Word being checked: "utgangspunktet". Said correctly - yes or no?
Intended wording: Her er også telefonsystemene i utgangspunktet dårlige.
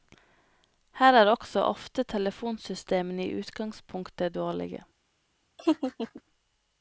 yes